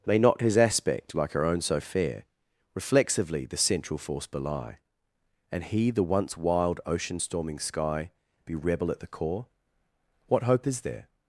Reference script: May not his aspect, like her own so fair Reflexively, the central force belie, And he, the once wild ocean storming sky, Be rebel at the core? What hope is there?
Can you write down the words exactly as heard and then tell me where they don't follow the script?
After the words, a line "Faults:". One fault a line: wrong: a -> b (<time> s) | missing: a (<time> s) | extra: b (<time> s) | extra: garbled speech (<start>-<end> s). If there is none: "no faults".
May not his aspect, like her own so fair Reflexively, the central force belie, And he, the once wild ocean storming sky, Be rebel at the core? What hope is there?
Faults:
no faults